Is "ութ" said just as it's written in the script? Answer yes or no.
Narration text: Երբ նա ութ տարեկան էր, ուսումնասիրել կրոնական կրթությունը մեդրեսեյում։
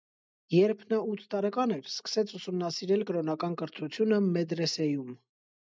yes